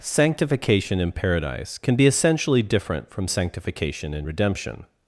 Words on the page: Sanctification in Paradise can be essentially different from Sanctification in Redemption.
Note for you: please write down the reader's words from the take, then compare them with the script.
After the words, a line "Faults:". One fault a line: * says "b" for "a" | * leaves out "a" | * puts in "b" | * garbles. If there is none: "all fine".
Sanctification in Paradise can be essentially different from Sanctification in Redemption.
Faults:
all fine